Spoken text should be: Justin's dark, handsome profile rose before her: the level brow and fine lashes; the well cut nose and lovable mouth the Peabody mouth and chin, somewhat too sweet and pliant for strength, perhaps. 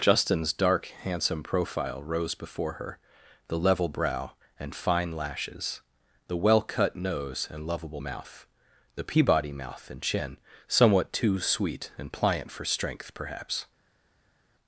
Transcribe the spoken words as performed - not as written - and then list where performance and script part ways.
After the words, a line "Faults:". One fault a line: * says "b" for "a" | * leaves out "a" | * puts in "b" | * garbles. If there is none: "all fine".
Justin's dark, handsome profile rose before her: the level brow and fine lashes; the well cut nose and lovable mouth the Peabody mouth and chin, somewhat too sweet and pliant for strength, perhaps.
Faults:
all fine